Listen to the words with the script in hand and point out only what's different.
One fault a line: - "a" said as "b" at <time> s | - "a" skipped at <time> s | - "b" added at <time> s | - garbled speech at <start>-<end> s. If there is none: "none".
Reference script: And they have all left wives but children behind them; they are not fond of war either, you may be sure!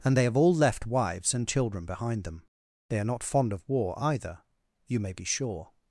- "but" said as "and" at 1.3 s